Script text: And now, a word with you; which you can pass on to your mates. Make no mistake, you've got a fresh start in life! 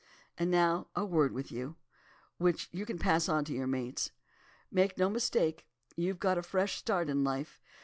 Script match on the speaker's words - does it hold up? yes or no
yes